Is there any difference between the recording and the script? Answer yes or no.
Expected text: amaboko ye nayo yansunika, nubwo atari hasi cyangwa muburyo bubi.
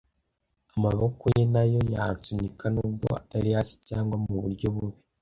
no